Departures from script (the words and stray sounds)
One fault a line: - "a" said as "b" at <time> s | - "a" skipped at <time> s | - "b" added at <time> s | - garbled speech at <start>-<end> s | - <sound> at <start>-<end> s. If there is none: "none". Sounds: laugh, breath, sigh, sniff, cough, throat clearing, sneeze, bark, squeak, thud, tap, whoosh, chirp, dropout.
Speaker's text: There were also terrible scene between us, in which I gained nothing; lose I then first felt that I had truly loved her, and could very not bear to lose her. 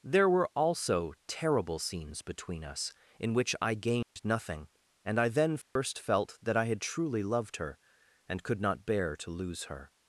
- "scene" said as "scenes" at 1.8 s
- dropout at 4.0-4.2 s
- "lose" said as "and" at 5.0 s
- dropout at 5.6-5.8 s
- "very" skipped at 8.6 s